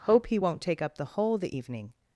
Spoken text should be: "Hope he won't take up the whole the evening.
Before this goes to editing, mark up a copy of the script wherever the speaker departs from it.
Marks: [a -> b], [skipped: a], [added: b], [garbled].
"Hope he won't take up the whole the evening.